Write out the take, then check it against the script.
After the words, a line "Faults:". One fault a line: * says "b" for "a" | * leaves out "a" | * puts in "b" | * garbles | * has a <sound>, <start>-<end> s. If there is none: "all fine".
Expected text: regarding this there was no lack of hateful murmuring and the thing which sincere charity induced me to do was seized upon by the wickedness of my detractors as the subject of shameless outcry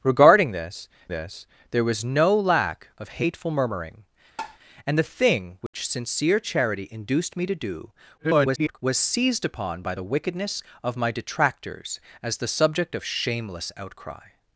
regarding this this there was no lack of hateful murmuring and the thing which sincere charity induced me to do [garbled] was seized upon by the wickedness of my detractors as the subject of shameless outcry
Faults:
* puts in "this"
* has a tap, 4.4-4.6 s
* has a dropout, 5.7-5.7 s
* garbles